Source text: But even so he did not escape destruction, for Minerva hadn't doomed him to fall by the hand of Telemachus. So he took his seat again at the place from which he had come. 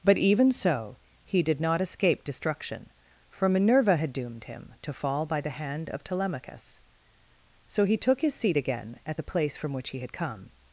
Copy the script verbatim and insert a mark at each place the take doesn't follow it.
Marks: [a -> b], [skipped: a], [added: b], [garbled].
But even so he did not escape destruction, for Minerva [hadn't -> had] doomed him to fall by the hand of Telemachus. So he took his seat again at the place from which he had come.